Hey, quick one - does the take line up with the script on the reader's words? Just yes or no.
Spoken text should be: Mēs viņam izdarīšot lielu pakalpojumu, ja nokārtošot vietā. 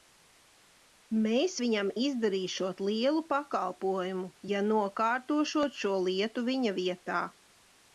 no